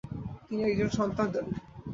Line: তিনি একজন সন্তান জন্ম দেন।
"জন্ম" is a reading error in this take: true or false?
true